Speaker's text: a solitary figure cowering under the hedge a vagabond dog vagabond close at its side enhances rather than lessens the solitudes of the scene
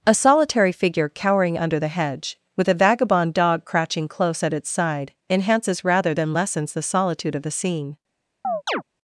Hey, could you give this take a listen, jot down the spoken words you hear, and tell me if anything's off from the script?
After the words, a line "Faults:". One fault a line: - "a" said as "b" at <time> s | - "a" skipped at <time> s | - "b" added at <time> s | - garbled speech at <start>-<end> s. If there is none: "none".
a solitary figure cowering under the hedge with a vagabond dog crouching close at its side enhances rather than lessens the solitude of the scene
Faults:
- "with" added at 2.6 s
- "vagabond" said as "crouching" at 3.6 s
- "solitudes" said as "solitude" at 6.8 s